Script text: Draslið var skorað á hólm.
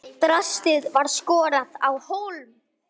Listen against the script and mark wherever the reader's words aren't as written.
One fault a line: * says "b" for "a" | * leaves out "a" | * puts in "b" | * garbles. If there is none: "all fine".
all fine